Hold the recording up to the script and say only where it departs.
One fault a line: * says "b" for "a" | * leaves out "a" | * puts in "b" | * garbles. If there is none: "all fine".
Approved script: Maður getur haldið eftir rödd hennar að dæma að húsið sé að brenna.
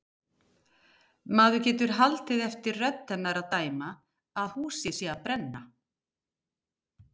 all fine